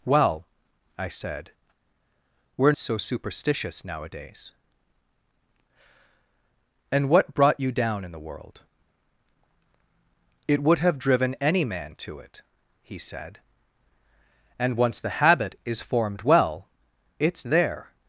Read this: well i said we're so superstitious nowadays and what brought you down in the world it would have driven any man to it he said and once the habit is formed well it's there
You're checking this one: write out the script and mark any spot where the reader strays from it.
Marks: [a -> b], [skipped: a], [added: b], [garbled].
well i said we're so superstitious nowadays and what brought you down in the world it would have driven any man to it he said and once the habit is formed well it's there